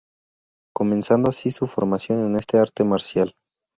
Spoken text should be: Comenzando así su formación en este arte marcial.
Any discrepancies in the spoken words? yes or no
no